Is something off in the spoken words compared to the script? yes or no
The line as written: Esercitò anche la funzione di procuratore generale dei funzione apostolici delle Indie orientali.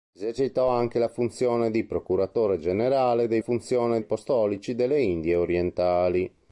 no